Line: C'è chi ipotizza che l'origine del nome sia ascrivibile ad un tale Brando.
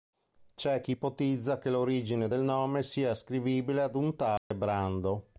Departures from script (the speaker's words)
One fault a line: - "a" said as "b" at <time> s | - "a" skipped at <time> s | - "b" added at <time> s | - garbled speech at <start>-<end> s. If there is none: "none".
none